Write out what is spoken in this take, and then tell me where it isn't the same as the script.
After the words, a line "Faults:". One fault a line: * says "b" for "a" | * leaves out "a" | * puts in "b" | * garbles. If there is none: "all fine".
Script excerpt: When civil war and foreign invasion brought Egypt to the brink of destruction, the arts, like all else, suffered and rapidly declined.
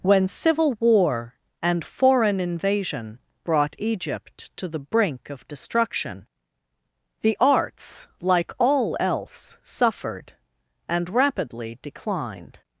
When civil war and foreign invasion brought Egypt to the brink of destruction, the arts, like all else, suffered and rapidly declined.
Faults:
all fine